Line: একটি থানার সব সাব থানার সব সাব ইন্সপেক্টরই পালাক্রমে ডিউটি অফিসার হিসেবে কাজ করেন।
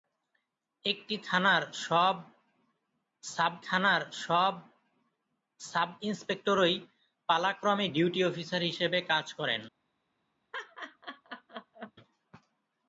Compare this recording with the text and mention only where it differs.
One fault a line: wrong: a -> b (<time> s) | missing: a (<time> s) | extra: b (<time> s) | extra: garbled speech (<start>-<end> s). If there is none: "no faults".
no faults